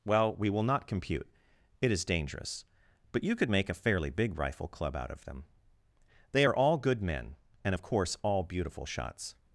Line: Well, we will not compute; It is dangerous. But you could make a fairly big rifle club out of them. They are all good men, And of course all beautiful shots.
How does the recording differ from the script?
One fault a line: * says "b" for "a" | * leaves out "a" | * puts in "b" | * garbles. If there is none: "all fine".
all fine